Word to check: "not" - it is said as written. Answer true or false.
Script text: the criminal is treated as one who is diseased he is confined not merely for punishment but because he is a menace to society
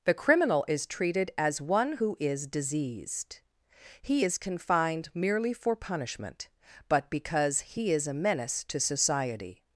false